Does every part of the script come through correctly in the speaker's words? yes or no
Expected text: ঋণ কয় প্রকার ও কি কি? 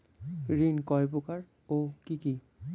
yes